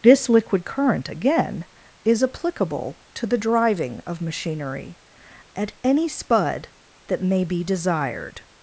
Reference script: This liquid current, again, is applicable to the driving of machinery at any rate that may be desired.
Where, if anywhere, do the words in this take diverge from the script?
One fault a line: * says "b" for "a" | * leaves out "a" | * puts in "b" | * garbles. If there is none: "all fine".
* says "spud" for "rate"